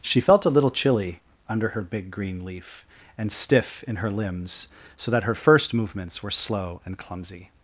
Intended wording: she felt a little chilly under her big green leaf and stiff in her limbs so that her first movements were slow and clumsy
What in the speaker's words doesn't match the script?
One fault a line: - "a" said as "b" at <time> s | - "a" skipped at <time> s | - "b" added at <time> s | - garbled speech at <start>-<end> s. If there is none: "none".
none